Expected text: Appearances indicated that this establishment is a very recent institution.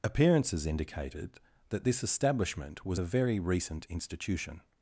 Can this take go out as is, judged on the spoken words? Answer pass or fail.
fail